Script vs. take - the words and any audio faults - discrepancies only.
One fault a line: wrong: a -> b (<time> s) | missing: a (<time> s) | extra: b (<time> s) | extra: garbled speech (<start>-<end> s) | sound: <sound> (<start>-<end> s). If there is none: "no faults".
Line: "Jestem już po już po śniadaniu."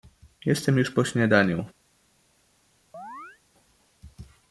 missing: już po (1.0 s)
sound: chirp (2.9-3.4 s)